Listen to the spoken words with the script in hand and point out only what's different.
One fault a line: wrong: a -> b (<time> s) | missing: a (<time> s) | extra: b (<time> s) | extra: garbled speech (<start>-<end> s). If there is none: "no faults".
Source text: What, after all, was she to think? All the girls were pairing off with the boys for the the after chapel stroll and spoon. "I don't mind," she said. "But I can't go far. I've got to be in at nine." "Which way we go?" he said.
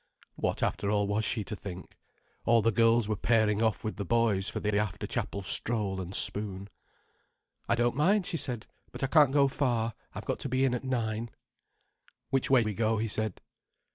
no faults